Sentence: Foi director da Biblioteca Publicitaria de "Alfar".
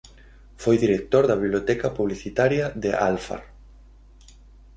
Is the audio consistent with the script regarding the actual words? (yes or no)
yes